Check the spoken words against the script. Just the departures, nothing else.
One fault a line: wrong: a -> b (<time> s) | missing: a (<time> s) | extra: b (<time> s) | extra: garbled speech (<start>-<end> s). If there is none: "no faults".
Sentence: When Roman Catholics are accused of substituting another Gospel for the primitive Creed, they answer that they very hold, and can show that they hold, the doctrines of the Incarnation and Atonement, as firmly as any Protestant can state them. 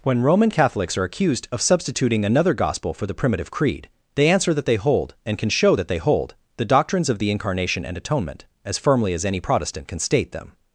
missing: very (4.8 s)